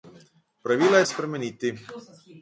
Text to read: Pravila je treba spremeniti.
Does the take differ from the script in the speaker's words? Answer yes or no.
yes